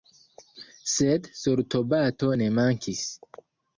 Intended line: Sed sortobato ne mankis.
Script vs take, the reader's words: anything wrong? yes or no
no